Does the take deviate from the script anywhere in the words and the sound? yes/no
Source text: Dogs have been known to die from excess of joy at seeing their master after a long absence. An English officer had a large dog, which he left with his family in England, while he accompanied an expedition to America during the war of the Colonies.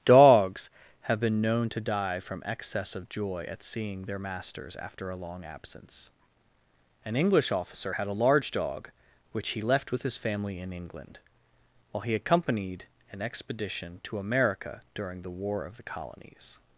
yes